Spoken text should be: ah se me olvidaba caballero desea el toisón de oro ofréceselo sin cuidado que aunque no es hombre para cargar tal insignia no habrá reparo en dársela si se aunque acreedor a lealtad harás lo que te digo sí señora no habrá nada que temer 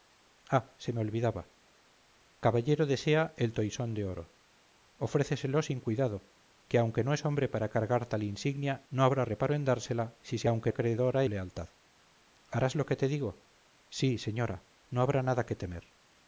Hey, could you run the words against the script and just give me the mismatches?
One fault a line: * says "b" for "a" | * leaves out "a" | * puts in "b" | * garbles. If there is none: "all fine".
all fine